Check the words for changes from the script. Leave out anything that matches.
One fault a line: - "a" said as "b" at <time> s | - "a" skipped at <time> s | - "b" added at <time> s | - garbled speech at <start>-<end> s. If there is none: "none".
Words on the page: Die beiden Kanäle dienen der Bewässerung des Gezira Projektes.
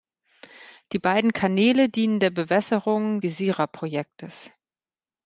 - "des" skipped at 3.2 s